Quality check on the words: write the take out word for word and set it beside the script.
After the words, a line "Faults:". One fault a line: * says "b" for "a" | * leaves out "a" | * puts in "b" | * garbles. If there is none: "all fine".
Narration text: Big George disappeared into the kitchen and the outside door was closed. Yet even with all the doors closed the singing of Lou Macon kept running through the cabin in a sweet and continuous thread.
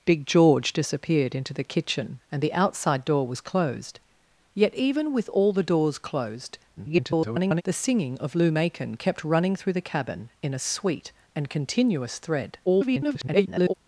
Big George disappeared into the kitchen and the outside door was closed. Yet even with all the doors closed [garbled] the singing of Lou Macon kept running through the cabin in a sweet and continuous thread. [garbled]
Faults:
* garbles
* garbles